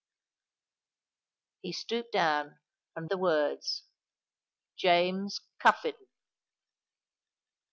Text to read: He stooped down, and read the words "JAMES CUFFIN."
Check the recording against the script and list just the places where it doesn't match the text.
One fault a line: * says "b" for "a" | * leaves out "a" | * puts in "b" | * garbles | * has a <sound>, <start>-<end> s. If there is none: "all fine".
* leaves out "read"